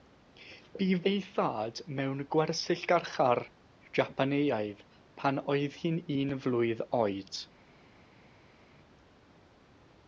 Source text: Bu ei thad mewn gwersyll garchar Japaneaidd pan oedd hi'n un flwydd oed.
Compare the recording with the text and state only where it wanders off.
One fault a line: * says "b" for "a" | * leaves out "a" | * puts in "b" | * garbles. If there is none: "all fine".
all fine